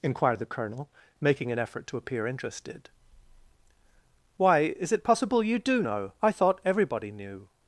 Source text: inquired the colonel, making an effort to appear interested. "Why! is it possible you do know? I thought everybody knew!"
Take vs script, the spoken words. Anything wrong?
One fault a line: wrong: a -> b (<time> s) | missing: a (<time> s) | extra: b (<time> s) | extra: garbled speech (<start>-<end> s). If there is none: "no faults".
no faults